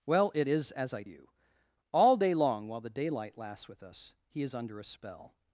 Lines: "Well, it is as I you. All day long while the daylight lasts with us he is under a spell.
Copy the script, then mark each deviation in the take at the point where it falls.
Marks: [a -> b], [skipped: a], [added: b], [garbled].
"Well, it is as I you. All day long while the daylight lasts with us he is under a spell.